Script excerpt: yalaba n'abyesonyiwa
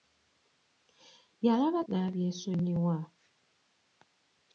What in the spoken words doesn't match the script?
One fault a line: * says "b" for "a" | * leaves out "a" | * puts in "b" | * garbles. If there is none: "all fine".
all fine